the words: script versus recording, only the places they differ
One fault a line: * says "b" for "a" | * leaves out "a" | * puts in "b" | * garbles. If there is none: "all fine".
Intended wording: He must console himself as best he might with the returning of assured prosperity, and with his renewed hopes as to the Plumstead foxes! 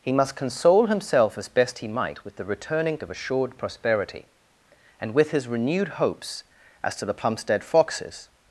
all fine